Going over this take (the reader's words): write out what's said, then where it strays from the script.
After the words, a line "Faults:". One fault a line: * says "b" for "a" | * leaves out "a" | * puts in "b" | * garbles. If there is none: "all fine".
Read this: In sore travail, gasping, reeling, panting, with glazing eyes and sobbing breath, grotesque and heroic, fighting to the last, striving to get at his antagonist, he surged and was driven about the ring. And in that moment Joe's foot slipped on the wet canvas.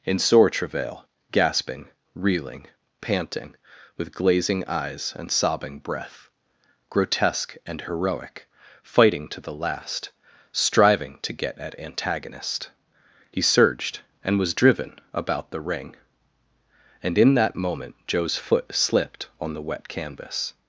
In sore travail, gasping, reeling, panting, with glazing eyes and sobbing breath, grotesque and heroic, fighting to the last, striving to get at antagonist, he surged and was driven about the ring. And in that moment Joe's foot slipped on the wet canvas.
Faults:
* leaves out "his"